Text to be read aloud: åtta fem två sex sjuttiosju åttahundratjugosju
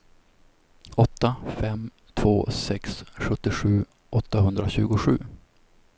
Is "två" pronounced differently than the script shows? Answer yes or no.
no